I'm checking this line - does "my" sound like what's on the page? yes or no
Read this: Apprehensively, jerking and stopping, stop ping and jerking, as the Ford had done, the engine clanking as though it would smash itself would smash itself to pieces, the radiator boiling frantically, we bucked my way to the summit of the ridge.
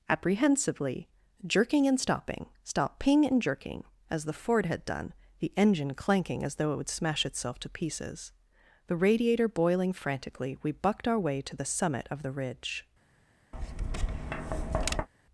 no